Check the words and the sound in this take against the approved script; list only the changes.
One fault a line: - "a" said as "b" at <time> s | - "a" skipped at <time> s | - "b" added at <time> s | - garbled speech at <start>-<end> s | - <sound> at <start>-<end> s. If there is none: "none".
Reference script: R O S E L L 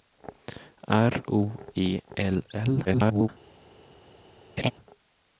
- "S" skipped at 1.6 s
- garbled speech at 2.8-3.3 s
- laugh at 4.6-4.7 s